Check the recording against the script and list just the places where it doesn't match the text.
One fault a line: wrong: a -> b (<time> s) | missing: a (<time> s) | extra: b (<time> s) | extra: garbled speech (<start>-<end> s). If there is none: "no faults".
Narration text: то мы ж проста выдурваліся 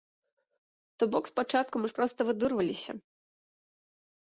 extra: бок спачатку (1.1 s)